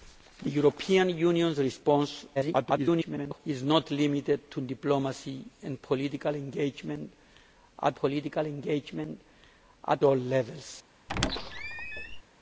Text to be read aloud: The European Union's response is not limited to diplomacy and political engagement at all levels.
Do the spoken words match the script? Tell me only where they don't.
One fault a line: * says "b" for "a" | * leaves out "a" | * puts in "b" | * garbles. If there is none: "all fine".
* garbles
* puts in "political engagement at"